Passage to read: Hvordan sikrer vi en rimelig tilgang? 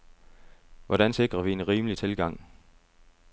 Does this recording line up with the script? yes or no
yes